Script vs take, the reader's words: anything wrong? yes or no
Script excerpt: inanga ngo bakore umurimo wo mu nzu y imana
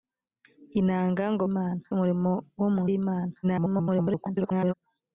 yes